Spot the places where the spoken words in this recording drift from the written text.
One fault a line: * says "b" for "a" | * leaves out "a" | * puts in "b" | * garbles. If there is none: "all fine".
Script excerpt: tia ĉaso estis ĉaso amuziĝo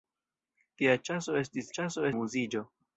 all fine